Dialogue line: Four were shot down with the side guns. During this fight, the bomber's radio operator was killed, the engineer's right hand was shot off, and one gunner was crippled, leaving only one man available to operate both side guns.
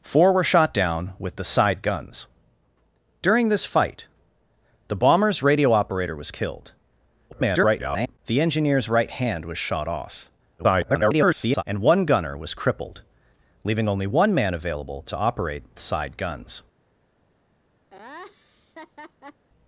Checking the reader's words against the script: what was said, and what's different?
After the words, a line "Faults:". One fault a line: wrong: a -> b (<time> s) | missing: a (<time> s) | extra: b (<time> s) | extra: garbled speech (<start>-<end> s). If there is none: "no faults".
Four were shot down with the side guns. During this fight, the bomber's radio operator was killed, [garbled] the engineer's right hand was shot off, [garbled] and one gunner was crippled, leaving only one man available to operate side guns.
Faults:
extra: garbled speech (7.3-8.2 s)
extra: garbled speech (10.6-11.6 s)
missing: both (15.8 s)